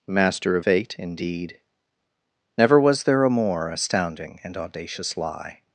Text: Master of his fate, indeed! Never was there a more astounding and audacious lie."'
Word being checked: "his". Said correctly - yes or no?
no